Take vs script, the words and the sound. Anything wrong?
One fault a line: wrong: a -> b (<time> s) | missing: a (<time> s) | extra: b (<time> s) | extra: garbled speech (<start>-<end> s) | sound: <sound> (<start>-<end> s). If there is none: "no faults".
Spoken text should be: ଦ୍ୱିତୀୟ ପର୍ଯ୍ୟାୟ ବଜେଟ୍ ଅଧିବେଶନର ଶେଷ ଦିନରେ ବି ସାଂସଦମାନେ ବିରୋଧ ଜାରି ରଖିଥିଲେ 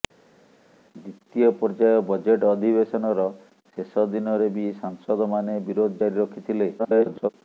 extra: garbled speech (6.8-7.3 s)